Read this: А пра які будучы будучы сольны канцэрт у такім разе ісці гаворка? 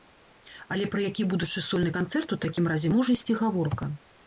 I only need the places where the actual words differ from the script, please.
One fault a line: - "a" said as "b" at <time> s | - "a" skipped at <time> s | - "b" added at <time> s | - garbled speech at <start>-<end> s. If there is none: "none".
- "А" said as "Але" at 0.8 s
- "будучы" skipped at 1.6 s
- "можа" added at 3.0 s